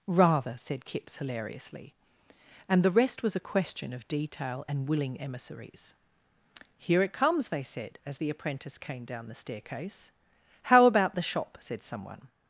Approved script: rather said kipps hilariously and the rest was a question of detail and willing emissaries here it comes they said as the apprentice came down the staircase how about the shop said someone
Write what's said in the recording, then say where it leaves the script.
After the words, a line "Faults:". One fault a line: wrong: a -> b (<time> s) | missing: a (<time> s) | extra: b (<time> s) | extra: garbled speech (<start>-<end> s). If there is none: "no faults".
rather said kipps hilariously and the rest was a question of detail and willing emissaries here it comes they said as the apprentice came down the staircase how about the shop said someone
Faults:
no faults